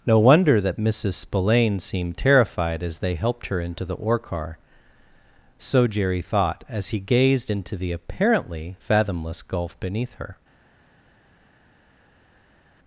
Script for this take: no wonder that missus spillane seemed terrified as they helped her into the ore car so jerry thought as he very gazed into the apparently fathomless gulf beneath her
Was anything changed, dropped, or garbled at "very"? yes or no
yes